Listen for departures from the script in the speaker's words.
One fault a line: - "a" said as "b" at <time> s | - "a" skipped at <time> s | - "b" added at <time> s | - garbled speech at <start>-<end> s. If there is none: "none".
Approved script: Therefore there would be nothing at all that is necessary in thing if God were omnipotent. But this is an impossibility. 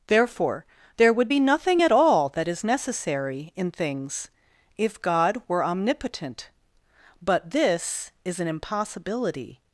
- "thing" said as "things" at 3.7 s